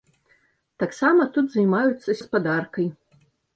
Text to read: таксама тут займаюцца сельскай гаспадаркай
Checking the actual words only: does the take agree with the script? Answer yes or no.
no